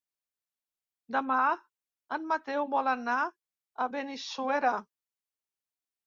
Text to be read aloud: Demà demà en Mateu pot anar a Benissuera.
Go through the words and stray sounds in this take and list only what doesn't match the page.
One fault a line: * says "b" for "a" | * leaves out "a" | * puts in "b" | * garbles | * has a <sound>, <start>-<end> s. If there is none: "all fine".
* leaves out "demà"
* says "vol" for "pot"